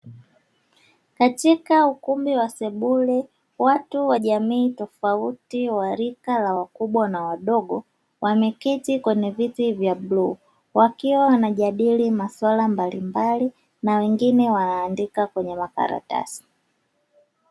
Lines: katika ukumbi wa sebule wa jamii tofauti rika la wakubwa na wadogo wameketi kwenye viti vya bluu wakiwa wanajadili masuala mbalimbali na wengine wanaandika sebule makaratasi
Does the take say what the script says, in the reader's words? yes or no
no